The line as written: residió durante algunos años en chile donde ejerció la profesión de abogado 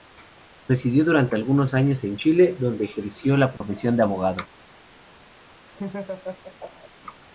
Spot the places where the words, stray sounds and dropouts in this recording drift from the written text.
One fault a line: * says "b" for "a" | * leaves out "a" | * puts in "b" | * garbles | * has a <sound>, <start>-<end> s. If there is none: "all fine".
* has a dropout, 3.6-3.6 s
* has a laugh, 5.7-6.9 s